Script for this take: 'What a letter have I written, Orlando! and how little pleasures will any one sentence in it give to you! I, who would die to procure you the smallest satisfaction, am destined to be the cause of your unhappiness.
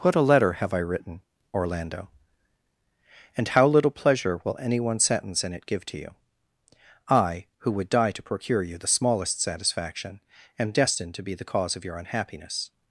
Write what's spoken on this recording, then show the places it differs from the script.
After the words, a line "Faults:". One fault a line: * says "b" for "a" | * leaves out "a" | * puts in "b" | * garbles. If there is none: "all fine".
'What a letter have I written, Orlando! and how little pleasure will any one sentence in it give to you! I, who would die to procure you the smallest satisfaction, am destined to be the cause of your unhappiness.
Faults:
* says "pleasure" for "pleasures"